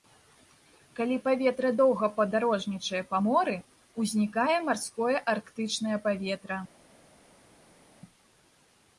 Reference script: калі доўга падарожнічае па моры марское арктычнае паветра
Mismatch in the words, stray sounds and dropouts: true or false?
true